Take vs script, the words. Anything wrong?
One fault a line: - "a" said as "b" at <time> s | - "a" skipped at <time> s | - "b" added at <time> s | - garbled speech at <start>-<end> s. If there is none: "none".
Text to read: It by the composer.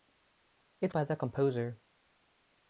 none